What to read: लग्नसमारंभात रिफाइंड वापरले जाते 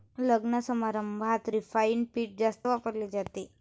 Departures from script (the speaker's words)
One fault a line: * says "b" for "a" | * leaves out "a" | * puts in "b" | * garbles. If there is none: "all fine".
* puts in "पीठ जास्त"